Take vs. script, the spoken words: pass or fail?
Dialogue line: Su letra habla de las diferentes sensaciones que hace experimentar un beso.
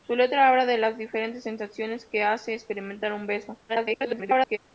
fail